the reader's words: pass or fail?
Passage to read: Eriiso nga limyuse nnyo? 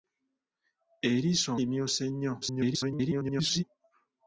fail